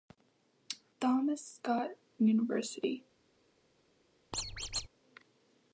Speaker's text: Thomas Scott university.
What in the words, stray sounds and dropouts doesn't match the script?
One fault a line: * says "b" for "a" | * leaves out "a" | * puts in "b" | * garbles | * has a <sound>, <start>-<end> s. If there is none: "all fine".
* has a squeak, 4.3-4.9 s